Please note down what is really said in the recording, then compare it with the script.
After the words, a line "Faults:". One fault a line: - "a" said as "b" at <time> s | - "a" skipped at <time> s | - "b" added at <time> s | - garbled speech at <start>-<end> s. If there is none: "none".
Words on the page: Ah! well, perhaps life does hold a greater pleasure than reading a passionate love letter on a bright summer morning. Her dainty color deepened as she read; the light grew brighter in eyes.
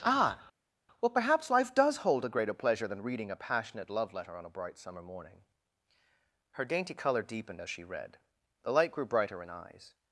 Ah! well, perhaps life does hold a greater pleasure than reading a passionate love letter on a bright summer morning. Her dainty color deepened as she read; the light grew brighter in eyes.
Faults:
none